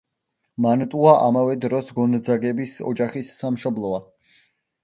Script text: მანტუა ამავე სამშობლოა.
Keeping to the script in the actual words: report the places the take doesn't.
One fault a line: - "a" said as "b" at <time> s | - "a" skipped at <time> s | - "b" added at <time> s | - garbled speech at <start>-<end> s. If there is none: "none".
- "დროს გონძაგების ოჯახის" added at 1.7 s